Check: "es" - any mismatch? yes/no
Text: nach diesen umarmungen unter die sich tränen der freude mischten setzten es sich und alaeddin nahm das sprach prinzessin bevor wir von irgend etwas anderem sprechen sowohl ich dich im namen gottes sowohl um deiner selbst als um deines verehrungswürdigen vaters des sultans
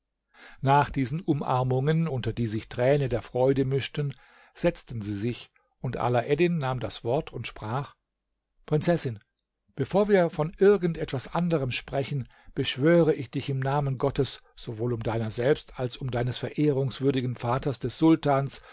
yes